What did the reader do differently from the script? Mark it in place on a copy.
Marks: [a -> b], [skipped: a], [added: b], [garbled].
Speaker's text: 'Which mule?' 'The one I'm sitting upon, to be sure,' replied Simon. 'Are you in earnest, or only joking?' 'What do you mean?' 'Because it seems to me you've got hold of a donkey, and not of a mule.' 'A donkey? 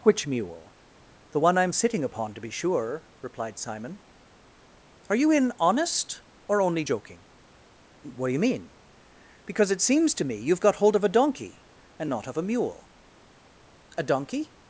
'Which mule?' 'The one I'm sitting upon, to be sure,' replied Simon. 'Are you in [earnest, -> honest] or only joking?' 'What do you mean?' 'Because it seems to me you've got hold of a donkey, and not of a mule.' 'A donkey?